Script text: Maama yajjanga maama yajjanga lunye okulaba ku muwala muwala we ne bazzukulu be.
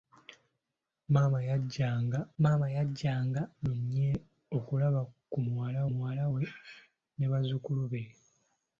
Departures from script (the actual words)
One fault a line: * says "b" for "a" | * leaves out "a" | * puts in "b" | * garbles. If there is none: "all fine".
all fine